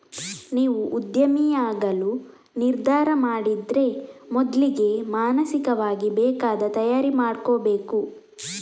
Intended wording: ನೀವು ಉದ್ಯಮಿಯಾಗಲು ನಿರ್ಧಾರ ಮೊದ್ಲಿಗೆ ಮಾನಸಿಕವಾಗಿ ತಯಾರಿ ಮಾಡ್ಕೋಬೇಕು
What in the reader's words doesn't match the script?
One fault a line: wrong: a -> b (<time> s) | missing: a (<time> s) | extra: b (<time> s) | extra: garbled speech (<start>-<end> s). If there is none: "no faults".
extra: ಮಾಡಿದ್ರೆ (3.2 s)
extra: ಬೇಕಾದ (6.2 s)